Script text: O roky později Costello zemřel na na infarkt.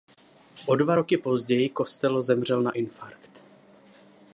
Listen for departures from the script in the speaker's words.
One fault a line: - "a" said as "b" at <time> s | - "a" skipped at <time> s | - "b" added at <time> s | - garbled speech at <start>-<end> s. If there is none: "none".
- "dva" added at 0.8 s
- "na" skipped at 2.7 s